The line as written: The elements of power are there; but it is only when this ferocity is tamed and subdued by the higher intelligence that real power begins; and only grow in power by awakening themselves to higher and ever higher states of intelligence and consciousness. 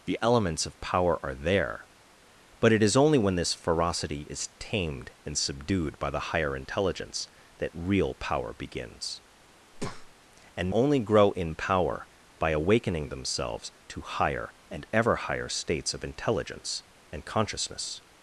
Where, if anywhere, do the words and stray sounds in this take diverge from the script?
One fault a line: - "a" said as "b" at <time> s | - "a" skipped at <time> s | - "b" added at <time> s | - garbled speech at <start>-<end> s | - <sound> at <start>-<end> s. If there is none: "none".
- breath at 9.7-10.1 s